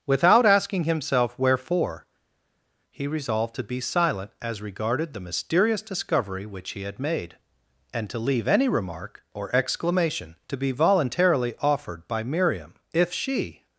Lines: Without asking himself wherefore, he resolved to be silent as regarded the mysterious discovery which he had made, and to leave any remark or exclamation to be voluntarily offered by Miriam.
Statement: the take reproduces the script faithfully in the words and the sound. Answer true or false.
false